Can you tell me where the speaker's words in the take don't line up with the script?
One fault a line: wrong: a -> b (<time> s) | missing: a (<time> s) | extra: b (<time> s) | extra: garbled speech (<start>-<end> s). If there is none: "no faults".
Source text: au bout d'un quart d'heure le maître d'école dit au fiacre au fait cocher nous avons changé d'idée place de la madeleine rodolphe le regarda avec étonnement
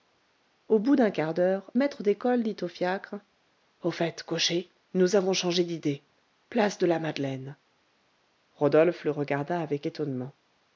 missing: le (1.7 s)